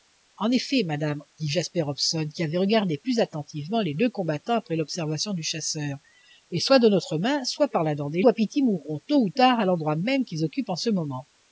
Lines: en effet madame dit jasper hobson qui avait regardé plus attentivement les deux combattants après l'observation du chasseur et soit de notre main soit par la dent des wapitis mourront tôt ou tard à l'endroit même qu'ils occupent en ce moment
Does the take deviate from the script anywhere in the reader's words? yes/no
no